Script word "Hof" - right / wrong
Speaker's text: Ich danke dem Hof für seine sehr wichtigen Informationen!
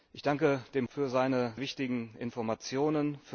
wrong